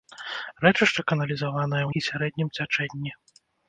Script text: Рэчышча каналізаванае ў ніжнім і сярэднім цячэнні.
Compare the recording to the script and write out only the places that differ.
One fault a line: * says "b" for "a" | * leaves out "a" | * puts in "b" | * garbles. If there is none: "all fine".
* leaves out "ніжнім"